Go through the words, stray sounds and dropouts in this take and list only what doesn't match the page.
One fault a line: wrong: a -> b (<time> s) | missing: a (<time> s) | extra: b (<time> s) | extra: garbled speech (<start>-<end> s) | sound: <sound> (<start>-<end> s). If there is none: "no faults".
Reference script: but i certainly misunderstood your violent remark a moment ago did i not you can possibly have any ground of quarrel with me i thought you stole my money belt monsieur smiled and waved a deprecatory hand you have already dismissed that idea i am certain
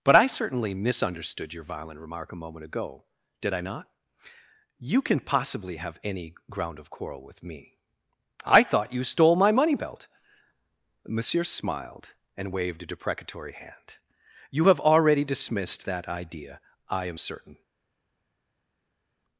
no faults